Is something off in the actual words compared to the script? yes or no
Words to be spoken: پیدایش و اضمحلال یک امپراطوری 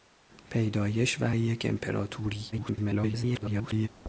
yes